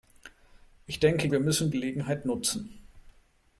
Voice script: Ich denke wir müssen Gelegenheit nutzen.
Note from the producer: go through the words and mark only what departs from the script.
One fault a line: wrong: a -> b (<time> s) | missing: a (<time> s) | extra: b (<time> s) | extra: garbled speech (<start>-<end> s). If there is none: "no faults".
no faults